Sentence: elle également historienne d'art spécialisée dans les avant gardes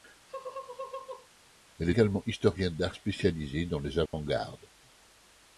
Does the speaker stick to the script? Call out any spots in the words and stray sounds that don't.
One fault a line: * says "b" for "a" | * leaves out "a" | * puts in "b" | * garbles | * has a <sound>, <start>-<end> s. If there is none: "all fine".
* has a laugh, 0.3-1.3 s
* has a dropout, 4.1-4.1 s